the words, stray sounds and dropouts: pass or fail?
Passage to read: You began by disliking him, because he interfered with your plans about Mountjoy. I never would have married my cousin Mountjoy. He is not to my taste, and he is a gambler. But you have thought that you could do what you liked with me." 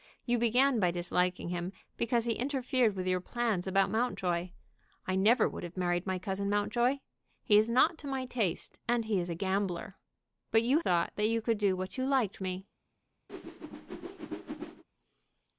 fail